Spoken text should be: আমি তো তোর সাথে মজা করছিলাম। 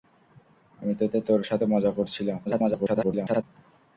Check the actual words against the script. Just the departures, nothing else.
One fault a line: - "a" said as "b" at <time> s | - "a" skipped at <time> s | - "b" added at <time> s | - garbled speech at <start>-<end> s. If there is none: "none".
- "তো" added at 1.1 s
- garbled speech at 2.5-3.4 s